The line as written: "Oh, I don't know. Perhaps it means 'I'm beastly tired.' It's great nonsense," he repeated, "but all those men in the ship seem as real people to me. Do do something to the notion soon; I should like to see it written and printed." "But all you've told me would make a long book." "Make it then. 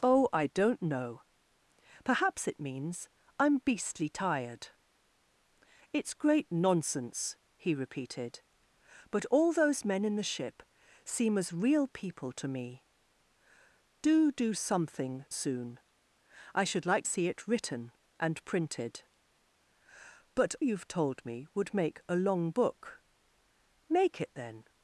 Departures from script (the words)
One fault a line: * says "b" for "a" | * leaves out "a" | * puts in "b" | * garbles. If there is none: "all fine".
* leaves out "to the notion"
* leaves out "to"
* leaves out "all"